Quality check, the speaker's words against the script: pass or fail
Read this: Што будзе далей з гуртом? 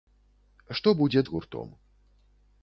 fail